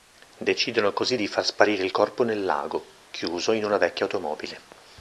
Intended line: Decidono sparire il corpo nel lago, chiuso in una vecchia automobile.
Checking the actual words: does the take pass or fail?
fail